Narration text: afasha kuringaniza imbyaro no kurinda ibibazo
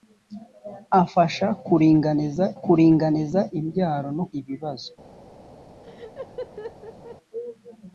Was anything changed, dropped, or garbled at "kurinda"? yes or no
yes